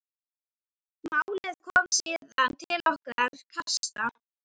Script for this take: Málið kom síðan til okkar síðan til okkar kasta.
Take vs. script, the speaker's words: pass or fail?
fail